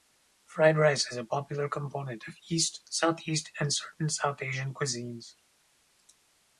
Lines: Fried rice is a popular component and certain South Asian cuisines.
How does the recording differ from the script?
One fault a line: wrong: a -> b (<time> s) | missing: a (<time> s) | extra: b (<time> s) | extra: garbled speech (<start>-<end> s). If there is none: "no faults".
extra: of East Southeast (2.3 s)